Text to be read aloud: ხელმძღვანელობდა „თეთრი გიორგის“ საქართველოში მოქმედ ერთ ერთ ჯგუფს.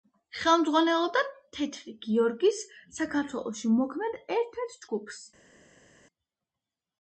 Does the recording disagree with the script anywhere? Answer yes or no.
no